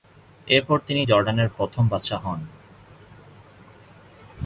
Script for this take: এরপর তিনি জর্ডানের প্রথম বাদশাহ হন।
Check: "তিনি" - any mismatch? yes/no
no